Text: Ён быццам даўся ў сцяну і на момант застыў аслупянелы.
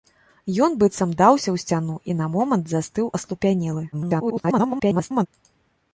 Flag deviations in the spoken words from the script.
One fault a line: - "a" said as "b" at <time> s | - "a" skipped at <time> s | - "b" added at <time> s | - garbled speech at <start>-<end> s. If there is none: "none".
- garbled speech at 3.9-5.3 s